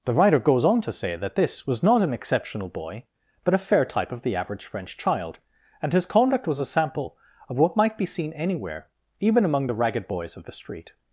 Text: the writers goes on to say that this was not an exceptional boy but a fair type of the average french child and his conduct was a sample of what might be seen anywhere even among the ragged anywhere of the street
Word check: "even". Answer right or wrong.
right